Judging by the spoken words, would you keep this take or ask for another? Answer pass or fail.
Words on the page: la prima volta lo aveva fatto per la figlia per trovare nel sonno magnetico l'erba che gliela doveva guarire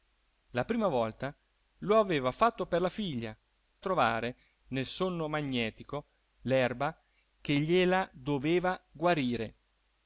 fail